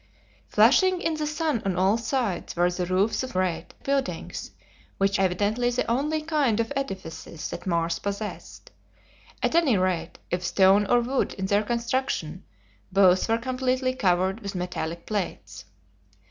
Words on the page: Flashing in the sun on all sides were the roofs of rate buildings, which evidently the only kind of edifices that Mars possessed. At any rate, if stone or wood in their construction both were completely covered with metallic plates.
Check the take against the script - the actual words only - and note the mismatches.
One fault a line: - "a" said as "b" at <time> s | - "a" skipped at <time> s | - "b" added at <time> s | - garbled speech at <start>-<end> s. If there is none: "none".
none